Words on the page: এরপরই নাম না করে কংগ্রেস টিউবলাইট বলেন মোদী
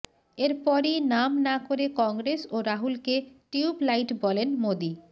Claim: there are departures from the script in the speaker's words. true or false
true